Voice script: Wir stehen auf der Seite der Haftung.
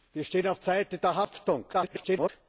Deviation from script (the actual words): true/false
true